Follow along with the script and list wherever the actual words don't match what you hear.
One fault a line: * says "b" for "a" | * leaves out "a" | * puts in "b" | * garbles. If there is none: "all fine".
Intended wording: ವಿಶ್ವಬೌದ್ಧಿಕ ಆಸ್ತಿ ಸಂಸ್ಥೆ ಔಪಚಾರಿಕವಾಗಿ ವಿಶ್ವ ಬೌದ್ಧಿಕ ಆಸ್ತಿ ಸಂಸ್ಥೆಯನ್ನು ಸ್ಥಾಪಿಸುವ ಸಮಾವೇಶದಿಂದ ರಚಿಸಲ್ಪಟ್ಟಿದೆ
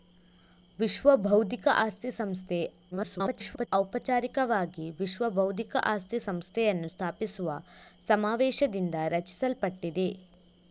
* garbles